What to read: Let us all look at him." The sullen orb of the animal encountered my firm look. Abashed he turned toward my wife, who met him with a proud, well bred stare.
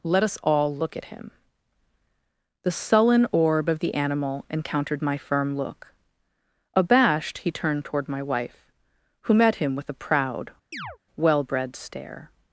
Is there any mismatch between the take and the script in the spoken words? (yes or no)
no